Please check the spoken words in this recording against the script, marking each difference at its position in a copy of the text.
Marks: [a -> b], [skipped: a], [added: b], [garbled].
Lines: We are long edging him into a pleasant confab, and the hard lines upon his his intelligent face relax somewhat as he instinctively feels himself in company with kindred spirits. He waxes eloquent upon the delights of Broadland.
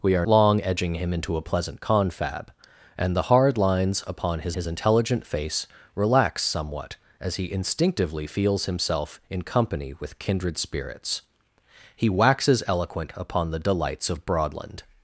We are long edging him into a pleasant confab, and the hard lines upon his his intelligent face relax somewhat as he instinctively feels himself in company with kindred spirits. He waxes eloquent upon the delights of Broadland.